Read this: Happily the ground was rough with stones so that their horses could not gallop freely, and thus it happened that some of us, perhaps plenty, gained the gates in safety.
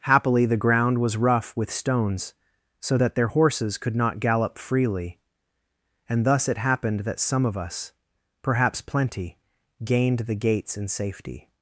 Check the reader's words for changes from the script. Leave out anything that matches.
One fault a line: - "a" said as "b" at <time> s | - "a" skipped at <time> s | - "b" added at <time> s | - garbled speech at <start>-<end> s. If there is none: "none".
none